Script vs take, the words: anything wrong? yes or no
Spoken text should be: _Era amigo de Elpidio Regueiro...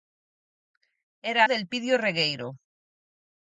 yes